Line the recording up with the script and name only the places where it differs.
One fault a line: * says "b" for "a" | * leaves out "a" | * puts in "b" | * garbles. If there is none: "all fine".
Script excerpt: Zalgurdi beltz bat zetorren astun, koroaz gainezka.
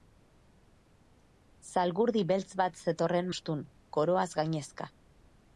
all fine